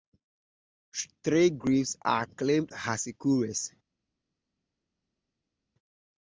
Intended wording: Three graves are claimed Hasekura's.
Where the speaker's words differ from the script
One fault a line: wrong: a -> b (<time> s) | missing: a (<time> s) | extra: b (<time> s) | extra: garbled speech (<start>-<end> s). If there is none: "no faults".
no faults